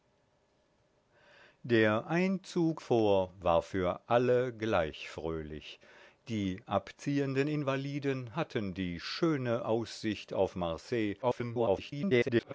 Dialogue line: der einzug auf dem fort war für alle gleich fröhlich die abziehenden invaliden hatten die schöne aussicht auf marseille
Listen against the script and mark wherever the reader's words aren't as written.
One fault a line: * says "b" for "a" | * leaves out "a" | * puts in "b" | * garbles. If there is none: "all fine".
* leaves out "auf dem"
* garbles